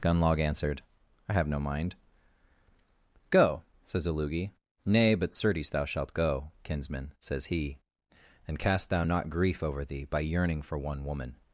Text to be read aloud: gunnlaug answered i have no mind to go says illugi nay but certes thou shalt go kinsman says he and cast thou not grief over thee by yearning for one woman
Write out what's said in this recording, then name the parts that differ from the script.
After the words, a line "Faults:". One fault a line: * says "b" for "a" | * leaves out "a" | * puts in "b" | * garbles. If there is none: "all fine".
gunnlaug answered i have no mind go says illugi nay but certes thou shalt go kinsman says he and cast thou not grief over thee by yearning for one woman
Faults:
* leaves out "to"